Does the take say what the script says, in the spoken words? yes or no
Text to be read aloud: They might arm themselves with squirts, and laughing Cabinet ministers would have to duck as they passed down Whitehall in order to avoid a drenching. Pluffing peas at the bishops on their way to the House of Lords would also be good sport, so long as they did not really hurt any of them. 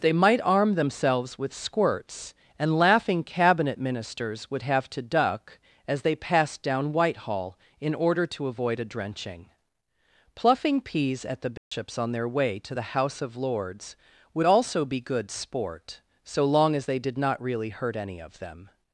yes